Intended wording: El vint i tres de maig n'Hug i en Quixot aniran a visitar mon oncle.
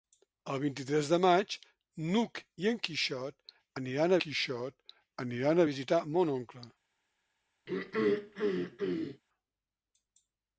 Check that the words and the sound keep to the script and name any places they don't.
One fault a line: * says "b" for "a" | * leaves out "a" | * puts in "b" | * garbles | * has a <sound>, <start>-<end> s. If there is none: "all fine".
* puts in "Quixot aniran"
* has a throat clearing, 7.7-9.2 s